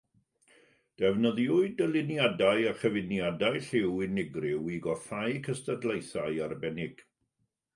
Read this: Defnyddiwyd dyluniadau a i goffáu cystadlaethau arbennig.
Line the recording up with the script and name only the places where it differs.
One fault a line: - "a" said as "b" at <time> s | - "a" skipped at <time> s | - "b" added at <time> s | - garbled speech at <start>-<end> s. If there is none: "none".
- "chyfuniadau lliw unigryw" added at 2.8 s